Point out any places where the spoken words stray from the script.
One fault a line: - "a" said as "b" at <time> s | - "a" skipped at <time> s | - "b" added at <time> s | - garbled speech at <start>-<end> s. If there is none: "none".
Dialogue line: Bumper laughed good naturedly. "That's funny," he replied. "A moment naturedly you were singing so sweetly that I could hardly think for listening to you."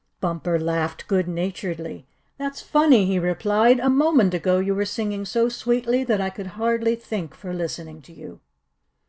- "naturedly" said as "ago" at 4.3 s